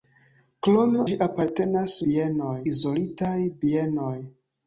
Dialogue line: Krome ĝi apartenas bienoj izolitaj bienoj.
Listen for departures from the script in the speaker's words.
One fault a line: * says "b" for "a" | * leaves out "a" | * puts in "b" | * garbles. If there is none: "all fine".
all fine